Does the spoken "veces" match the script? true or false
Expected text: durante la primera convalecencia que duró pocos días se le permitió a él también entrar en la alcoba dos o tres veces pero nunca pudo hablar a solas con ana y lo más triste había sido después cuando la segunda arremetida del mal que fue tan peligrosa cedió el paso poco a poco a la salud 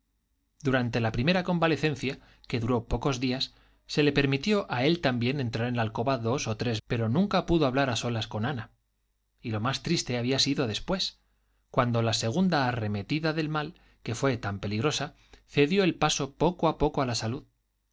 false